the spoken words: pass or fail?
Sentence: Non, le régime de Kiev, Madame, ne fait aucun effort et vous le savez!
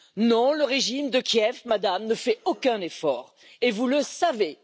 pass